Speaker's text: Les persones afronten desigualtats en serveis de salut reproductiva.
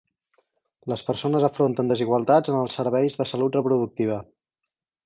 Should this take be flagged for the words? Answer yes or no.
yes